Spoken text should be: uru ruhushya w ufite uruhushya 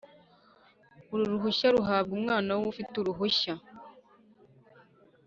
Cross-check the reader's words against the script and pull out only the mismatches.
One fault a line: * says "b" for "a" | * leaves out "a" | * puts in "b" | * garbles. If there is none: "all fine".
* puts in "ruhabwa umwana"